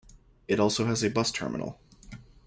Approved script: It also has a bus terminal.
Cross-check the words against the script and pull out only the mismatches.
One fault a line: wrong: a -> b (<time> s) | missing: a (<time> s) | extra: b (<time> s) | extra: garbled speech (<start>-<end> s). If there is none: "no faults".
no faults